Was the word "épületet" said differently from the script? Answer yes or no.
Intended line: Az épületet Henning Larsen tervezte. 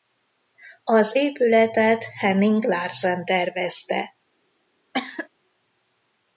no